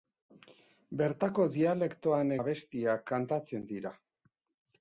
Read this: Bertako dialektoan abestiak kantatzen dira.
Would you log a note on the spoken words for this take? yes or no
no